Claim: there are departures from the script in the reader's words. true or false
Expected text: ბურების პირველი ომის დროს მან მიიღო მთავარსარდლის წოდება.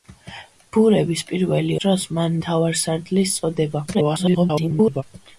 true